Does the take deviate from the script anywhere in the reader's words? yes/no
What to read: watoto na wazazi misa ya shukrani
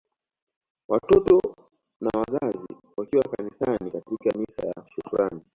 yes